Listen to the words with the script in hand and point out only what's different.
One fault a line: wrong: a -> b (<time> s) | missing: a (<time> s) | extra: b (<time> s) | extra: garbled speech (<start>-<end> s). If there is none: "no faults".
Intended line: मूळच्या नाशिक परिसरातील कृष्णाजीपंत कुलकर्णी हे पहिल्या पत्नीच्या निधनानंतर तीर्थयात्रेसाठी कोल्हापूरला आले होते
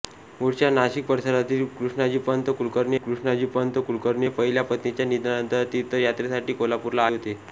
extra: कृष्णाजीपंत कुलकर्णी (3.0 s)
missing: आले (7.1 s)